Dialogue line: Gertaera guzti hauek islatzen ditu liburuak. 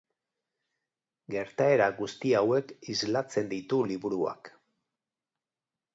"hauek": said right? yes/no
yes